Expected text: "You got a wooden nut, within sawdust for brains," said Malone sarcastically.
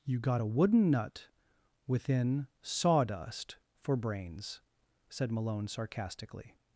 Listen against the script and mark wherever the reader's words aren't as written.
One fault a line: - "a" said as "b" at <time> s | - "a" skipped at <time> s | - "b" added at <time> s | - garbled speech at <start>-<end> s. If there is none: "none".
none